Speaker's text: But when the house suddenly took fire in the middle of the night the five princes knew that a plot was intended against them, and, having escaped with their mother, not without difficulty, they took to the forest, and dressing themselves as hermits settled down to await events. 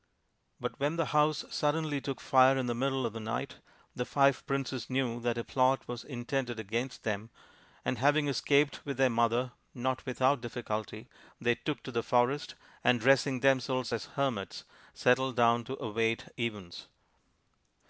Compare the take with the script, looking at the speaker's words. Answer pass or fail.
pass